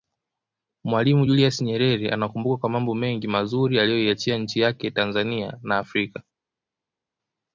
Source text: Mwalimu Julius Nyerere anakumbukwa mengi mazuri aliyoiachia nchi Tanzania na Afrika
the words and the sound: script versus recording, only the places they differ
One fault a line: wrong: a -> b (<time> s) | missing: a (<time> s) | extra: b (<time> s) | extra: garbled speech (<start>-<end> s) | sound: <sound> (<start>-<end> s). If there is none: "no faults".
extra: kwa mambo (2.6 s)
extra: yake (4.6 s)